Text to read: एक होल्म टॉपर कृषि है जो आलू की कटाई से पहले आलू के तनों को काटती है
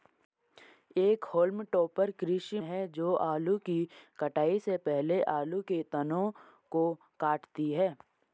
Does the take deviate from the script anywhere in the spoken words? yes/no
no